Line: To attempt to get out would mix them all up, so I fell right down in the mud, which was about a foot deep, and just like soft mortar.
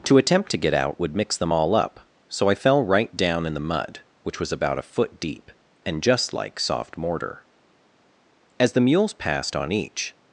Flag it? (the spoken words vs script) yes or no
yes